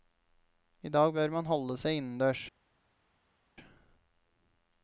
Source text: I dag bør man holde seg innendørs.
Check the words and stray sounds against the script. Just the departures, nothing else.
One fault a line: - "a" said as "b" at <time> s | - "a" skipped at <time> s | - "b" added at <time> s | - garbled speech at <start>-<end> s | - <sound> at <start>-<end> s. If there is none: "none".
none